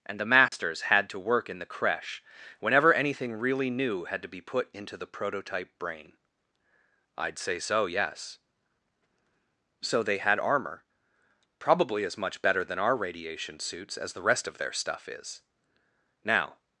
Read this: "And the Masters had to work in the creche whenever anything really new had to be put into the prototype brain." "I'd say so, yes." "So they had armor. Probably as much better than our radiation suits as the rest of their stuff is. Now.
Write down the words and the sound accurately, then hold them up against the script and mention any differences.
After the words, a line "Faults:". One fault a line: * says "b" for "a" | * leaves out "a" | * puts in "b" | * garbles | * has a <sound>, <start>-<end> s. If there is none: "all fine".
"And the Masters had to work in the creche whenever anything really new had to be put into the prototype brain." "I'd say so, yes." "So they had armor. Probably as much better than our radiation suits as the rest of their stuff is. Now.
Faults:
* has a dropout, 0.5-0.5 s